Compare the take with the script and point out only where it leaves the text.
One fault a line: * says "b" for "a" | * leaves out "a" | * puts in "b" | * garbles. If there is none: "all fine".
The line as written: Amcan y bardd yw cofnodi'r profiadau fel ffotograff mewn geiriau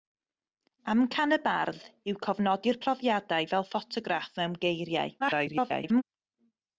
* garbles